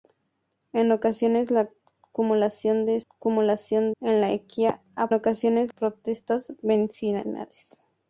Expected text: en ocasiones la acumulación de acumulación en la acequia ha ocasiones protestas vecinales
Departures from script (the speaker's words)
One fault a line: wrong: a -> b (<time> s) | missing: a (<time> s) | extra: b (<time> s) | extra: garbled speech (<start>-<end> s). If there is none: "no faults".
no faults